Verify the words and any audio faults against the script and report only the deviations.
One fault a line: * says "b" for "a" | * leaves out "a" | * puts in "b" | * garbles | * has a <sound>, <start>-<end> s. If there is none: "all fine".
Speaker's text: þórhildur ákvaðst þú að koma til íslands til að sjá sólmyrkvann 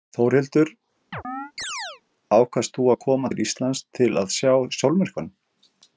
* has a chirp, 1.1-2.0 s